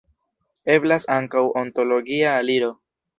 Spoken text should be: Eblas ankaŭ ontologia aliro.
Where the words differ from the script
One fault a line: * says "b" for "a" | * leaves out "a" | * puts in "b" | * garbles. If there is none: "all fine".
all fine